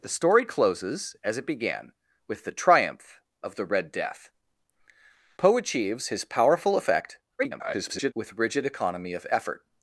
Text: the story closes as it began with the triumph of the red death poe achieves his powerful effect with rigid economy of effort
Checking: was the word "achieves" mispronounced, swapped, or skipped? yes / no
no